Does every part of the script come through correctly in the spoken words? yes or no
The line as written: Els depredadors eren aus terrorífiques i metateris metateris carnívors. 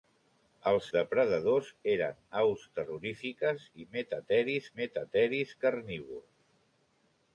yes